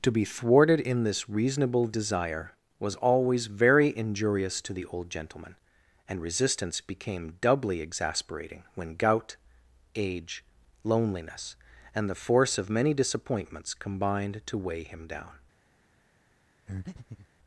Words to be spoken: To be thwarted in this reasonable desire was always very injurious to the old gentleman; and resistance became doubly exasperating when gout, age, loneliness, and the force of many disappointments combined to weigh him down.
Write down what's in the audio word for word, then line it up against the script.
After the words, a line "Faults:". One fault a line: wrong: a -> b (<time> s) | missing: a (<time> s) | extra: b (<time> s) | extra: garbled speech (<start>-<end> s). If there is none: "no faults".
To be thwarted in this reasonable desire was always very injurious to the old gentleman; and resistance became doubly exasperating when gout, age, loneliness, and the force of many disappointments combined to weigh him down.
Faults:
no faults